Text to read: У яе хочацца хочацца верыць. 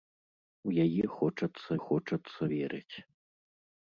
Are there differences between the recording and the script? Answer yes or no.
no